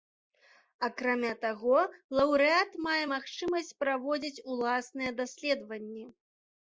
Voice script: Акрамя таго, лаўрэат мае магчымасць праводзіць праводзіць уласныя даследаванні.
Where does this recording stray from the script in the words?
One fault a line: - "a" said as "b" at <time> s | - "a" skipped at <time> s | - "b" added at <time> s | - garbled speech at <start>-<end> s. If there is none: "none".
- "праводзіць" skipped at 4.4 s